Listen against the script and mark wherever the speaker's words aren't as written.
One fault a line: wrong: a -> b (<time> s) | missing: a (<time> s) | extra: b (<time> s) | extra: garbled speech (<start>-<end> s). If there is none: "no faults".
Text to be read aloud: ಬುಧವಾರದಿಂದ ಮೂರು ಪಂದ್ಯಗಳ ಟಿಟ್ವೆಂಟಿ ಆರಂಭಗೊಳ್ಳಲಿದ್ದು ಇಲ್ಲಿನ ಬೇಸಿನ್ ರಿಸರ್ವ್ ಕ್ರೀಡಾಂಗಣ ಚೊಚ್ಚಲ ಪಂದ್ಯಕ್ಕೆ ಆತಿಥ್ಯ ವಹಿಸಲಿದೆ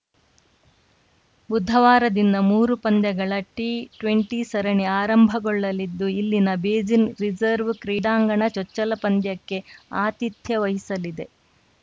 extra: ಸರಣಿ (4.5 s)